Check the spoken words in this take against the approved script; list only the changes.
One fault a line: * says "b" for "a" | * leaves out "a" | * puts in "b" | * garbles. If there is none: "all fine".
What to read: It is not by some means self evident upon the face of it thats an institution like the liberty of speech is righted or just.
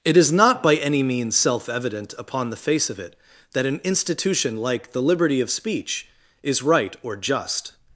* says "any" for "some"
* says "that" for "thats"
* says "right" for "righted"